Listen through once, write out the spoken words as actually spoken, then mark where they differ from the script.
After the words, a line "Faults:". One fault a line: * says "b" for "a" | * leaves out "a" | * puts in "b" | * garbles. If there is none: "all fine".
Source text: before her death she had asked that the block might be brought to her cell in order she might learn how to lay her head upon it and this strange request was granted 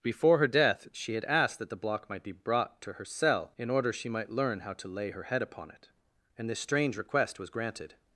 before her death she had asked that the block might be brought to her cell in order she might learn how to lay her head upon it and this strange request was granted
Faults:
all fine